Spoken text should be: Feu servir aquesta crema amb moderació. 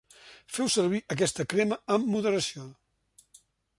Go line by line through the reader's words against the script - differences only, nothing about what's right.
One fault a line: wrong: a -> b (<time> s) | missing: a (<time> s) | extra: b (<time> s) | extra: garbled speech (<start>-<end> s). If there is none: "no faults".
no faults